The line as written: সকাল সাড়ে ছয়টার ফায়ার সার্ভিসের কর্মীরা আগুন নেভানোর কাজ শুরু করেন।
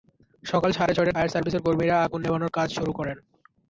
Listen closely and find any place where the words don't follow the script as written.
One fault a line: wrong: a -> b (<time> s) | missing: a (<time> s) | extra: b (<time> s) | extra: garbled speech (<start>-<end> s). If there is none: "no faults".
no faults